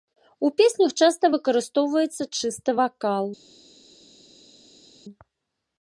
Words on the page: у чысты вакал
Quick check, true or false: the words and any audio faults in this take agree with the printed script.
false